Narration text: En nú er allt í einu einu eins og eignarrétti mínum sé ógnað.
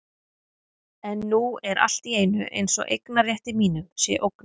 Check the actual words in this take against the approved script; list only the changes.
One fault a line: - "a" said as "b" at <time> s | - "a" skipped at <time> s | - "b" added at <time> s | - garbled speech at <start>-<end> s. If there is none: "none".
- "einu" skipped at 2.5 s